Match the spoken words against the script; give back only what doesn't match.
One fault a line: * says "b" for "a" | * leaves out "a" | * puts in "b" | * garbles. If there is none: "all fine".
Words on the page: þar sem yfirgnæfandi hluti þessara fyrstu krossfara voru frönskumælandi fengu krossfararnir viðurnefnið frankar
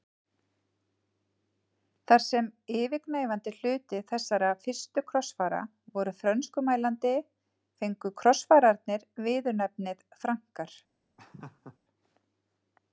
all fine